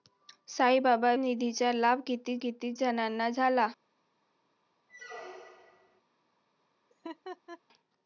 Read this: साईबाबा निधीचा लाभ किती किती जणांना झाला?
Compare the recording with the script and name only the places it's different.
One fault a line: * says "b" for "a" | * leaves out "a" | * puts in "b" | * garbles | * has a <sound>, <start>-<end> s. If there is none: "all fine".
* has a squeak, 4.9-6.0 s
* has a laugh, 6.9-7.6 s